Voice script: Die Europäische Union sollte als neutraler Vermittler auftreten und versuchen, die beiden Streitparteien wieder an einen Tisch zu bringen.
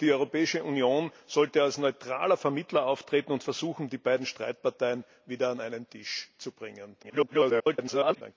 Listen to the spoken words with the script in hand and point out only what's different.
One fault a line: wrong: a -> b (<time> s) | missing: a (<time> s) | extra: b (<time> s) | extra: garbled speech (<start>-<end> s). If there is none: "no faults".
extra: garbled speech (7.0-8.2 s)